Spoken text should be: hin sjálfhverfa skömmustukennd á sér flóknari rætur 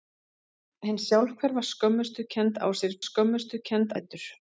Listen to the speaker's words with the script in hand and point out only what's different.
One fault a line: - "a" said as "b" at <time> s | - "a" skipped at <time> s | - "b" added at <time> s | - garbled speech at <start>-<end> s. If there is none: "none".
- "flóknari" said as "skömmustukennd" at 3.1 s